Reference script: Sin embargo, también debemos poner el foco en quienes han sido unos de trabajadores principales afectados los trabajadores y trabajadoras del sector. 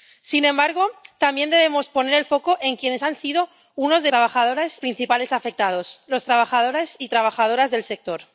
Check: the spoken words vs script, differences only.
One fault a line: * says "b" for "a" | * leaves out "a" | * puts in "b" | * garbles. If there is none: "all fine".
all fine